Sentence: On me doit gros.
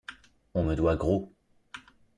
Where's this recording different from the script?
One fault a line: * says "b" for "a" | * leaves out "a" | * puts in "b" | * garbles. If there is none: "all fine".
all fine